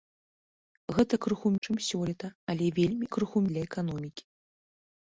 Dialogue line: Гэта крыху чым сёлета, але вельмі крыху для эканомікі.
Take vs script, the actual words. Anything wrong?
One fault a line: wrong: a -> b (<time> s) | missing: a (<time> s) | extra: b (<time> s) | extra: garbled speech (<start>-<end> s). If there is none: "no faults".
no faults